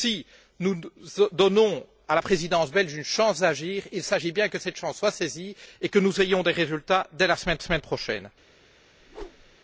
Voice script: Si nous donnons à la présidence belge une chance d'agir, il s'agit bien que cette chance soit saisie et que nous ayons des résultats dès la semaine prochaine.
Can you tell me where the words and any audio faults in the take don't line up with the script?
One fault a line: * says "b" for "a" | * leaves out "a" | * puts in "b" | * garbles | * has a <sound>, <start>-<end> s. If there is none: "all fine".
* puts in "semaine"
* has a whoosh, 9.0-9.6 s